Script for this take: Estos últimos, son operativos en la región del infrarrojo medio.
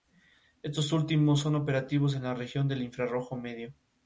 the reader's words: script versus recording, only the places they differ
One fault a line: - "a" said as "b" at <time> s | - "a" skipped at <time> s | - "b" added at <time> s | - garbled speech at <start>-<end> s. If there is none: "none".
none